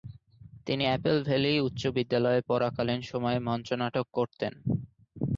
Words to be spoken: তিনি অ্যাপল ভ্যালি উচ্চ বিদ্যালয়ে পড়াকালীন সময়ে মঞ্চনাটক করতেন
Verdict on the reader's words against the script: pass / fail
pass